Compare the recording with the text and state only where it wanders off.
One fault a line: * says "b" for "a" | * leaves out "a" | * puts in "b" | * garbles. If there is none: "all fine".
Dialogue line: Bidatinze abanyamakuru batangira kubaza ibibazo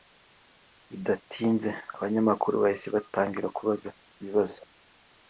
* puts in "bahise"